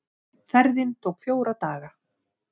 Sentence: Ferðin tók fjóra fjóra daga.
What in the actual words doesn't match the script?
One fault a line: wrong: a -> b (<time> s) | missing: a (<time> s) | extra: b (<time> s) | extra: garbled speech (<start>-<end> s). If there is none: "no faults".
missing: fjóra (1.6 s)